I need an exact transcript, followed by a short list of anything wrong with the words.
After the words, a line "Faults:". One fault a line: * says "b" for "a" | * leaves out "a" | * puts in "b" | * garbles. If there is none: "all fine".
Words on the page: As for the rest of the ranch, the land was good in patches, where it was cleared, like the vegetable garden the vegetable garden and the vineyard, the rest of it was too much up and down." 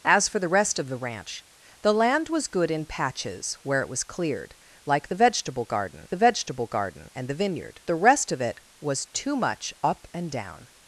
As for the rest of the ranch, the land was good in patches, where it was cleared, like the vegetable garden the vegetable garden and the vineyard, the rest of it was too much up and down."
Faults:
all fine